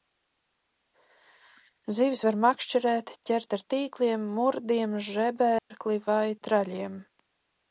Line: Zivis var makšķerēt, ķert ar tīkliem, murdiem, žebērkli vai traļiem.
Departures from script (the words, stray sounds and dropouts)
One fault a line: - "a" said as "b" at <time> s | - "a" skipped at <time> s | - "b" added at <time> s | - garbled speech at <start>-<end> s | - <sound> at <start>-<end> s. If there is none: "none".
- dropout at 5.6-5.7 s